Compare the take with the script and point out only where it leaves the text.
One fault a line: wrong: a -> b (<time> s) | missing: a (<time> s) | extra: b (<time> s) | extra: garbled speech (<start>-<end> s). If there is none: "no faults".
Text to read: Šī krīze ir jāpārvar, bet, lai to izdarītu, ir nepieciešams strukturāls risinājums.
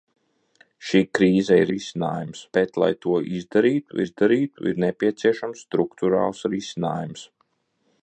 wrong: jāpārvar -> risinājums (1.8 s)
extra: izdarītu (4.1 s)